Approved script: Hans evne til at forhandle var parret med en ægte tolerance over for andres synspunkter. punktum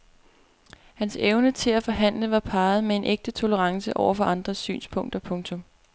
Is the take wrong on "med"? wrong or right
right